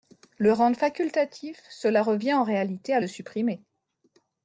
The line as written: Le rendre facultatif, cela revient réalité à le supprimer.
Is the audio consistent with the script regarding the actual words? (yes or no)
no